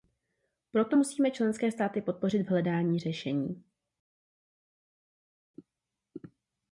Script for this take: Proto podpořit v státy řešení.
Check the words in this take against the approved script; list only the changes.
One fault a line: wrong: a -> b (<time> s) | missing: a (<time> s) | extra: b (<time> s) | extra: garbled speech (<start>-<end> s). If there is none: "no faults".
extra: musíme členské státy (1.0 s)
wrong: státy -> hledání (2.5 s)